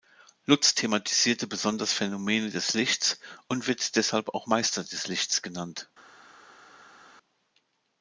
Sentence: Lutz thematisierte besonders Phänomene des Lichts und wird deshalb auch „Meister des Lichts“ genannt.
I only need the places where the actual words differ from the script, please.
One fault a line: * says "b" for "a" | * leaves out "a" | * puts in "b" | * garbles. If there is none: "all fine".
all fine